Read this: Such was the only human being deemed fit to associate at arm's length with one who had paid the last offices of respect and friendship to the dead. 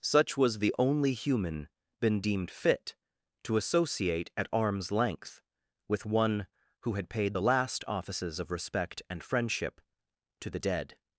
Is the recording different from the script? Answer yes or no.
yes